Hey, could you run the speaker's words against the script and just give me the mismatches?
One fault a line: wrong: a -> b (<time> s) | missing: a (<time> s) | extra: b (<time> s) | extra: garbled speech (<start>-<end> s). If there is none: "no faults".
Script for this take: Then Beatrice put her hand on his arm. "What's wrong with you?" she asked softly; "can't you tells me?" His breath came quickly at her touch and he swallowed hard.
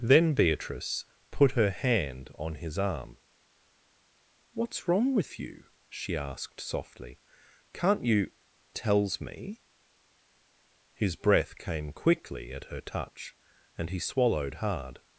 no faults